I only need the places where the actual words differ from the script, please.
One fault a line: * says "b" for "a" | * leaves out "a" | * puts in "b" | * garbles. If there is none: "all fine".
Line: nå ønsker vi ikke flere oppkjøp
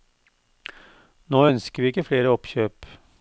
all fine